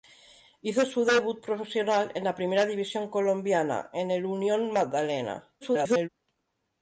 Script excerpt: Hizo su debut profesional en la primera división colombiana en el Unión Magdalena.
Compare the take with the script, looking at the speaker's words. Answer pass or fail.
fail